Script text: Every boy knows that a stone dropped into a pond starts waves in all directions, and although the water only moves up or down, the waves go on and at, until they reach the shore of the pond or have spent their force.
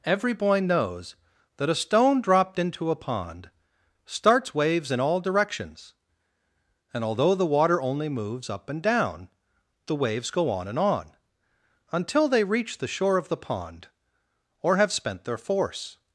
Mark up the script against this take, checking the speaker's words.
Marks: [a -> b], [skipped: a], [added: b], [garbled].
Every boy knows that a stone dropped into a pond starts waves in all directions, and although the water only moves up [or -> and] down, the waves go on and [at, -> on] until they reach the shore of the pond or have spent their force.